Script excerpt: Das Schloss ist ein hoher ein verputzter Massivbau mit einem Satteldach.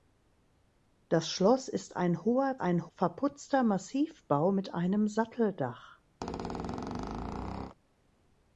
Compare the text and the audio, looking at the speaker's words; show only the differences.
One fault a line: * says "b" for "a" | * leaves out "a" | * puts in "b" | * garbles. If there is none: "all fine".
all fine